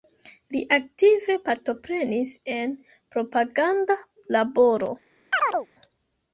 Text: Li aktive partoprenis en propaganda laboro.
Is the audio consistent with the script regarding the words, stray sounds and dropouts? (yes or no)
no